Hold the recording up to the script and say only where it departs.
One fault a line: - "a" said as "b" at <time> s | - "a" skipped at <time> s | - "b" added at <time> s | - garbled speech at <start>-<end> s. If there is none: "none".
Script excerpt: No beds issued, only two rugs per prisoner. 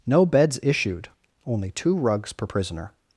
none